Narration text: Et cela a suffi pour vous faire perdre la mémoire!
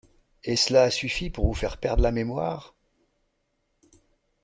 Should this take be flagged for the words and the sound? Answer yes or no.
no